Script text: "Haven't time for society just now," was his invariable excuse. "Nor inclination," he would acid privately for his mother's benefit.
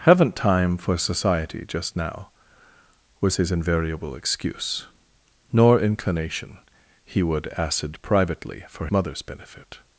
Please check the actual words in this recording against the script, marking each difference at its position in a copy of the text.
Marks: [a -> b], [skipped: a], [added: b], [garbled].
"Haven't time for society just now," was his invariable excuse. "Nor inclination," he would acid privately for [skipped: his] mother's benefit.